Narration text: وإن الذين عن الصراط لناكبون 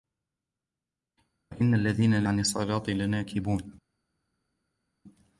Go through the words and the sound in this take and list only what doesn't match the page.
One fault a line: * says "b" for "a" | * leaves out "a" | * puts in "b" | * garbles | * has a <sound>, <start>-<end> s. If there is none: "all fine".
all fine